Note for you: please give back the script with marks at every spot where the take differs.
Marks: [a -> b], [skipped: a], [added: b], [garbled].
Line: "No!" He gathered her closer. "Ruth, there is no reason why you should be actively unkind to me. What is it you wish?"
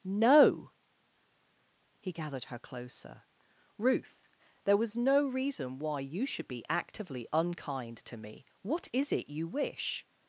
"No!" He gathered her closer. "Ruth, there [is -> was] no reason why you should be actively unkind to me. What is it you wish?"